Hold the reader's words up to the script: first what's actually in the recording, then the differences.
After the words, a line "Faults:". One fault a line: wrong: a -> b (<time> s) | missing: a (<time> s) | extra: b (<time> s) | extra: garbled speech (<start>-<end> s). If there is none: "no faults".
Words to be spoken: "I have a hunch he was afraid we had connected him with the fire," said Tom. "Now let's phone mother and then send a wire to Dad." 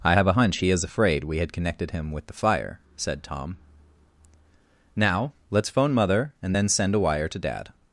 "I have a hunch he is afraid we had connected him with the fire," said Tom. "Now let's phone mother and then send a wire to Dad."
Faults:
wrong: was -> is (0.7 s)